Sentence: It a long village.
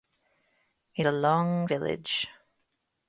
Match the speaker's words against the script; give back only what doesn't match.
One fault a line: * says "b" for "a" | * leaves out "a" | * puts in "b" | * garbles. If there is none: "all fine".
all fine